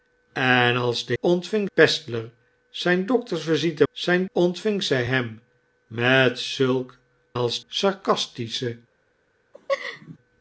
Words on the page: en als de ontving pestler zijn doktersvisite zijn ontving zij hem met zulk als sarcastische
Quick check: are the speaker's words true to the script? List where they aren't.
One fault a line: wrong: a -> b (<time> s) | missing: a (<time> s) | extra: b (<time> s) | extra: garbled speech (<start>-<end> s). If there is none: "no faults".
no faults